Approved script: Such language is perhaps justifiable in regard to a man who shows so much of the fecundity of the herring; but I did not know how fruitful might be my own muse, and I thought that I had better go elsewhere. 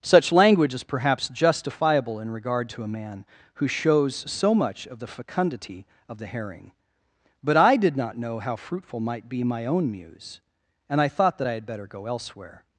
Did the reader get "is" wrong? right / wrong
right